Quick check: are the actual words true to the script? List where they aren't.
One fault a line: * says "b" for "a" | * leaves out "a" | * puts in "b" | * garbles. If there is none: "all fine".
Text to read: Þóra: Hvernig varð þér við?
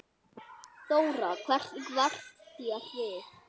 all fine